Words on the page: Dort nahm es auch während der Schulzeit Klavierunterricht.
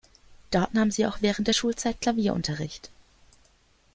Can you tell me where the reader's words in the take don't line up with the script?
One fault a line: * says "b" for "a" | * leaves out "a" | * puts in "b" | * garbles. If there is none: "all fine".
* says "sie" for "es"